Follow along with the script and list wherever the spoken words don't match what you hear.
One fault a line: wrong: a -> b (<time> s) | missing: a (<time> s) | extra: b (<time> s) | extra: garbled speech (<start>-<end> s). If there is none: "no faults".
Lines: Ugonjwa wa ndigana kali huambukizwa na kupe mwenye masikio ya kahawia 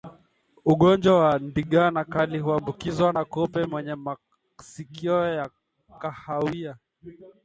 no faults